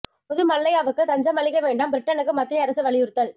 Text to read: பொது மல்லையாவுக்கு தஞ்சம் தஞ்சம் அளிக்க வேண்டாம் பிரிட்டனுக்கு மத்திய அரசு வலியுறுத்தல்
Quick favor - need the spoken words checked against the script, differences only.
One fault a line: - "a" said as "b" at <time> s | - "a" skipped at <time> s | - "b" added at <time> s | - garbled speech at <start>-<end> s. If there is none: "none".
- "தஞ்சம்" skipped at 1.4 s